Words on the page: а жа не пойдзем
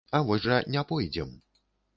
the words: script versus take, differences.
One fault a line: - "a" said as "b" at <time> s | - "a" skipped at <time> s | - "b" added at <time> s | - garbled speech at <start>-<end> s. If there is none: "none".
- "вось" added at 0.3 s